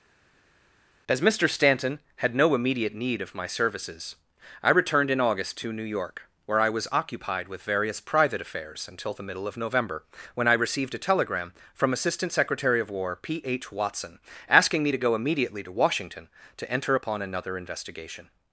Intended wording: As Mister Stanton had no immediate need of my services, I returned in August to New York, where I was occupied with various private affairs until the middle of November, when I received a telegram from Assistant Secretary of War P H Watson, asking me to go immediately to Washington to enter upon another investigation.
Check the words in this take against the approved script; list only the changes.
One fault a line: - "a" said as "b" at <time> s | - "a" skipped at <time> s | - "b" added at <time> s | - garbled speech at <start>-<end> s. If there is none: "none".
none